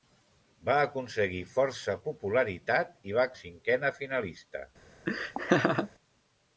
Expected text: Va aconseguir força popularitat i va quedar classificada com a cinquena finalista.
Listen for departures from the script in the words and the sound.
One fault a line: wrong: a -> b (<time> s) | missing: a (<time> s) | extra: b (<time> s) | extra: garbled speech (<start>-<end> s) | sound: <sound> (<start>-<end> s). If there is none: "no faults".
missing: quedar classificada com (3.3 s)
sound: laugh (5.1-5.9 s)